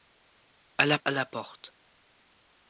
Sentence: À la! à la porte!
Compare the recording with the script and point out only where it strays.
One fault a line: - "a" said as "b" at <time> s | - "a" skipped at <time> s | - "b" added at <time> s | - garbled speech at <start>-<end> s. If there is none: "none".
none